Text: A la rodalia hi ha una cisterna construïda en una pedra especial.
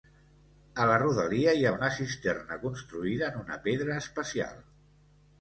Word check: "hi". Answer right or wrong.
right